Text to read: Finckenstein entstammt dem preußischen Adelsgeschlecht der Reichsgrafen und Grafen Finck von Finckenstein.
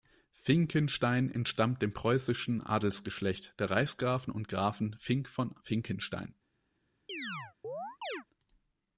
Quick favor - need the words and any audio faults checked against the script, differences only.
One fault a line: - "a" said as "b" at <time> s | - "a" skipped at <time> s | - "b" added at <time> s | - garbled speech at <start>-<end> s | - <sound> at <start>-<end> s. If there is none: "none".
- chirp at 7.1-8.2 s